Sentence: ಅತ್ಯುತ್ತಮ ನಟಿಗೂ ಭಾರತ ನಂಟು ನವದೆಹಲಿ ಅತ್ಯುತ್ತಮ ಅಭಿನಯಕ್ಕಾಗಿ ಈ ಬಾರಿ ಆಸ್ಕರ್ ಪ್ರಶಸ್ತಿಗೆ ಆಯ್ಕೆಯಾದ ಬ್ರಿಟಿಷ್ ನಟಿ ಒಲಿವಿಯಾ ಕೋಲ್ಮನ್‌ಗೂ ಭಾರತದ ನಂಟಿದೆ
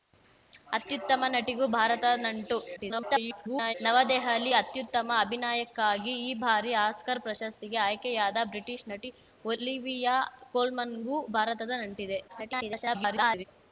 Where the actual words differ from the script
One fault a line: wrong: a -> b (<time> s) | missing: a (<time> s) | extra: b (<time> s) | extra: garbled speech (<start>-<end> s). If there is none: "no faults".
extra: garbled speech (2.8-3.7 s)
extra: garbled speech (12.3-13.4 s)